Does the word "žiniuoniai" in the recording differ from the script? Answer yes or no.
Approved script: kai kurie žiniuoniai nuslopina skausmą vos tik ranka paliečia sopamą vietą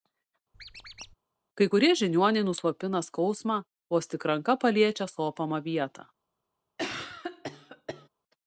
no